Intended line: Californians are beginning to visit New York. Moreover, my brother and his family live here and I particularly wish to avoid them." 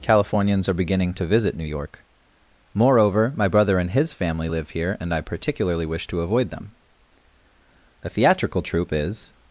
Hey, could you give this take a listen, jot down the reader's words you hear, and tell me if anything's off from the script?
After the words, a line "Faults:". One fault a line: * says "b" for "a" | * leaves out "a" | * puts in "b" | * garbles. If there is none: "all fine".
Californians are beginning to visit New York. Moreover, my brother and his family live here and I particularly wish to avoid them." "A theatrical troupe is
Faults:
* puts in "A theatrical troupe is"